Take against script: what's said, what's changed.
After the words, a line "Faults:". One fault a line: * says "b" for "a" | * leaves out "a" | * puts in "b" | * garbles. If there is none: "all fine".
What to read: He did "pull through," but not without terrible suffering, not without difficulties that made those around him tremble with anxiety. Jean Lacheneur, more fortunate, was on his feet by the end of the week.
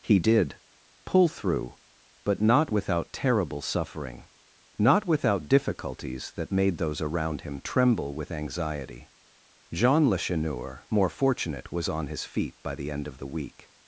He did "pull through," but not without terrible suffering, not without difficulties that made those around him tremble with anxiety. Jean Lacheneur, more fortunate, was on his feet by the end of the week.
Faults:
all fine